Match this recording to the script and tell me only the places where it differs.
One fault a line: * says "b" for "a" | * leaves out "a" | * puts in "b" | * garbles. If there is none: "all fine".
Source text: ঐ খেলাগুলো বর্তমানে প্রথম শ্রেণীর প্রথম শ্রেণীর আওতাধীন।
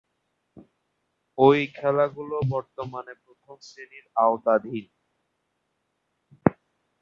* leaves out "প্রথম শ্রেণীর"